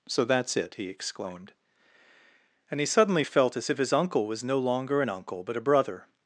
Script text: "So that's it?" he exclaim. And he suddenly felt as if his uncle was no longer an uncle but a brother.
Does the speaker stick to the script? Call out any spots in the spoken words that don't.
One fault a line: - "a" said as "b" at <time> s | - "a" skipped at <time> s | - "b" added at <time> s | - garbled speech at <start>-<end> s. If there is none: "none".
- "exclaim" said as "exclaimed" at 0.9 s